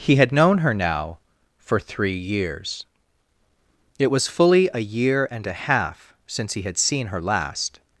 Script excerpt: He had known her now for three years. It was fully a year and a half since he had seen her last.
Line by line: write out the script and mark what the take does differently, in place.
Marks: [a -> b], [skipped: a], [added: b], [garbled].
He had known her now for three years. It was fully a year and a half since he had seen her last.